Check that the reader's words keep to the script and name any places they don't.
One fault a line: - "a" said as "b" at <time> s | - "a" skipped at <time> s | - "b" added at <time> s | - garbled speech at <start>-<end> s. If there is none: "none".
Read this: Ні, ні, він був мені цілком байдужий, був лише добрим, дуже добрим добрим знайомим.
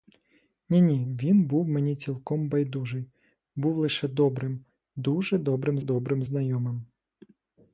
none